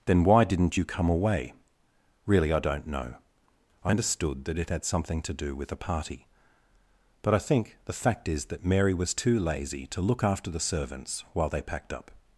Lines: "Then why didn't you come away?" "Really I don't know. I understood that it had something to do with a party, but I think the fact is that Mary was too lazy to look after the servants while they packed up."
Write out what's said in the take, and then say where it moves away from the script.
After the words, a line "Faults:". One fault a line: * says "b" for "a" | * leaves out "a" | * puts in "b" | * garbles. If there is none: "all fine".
"Then why didn't you come away?" "Really I don't know. I understood that it had something to do with a party, but I think the fact is that Mary was too lazy to look after the servants while they packed up."
Faults:
all fine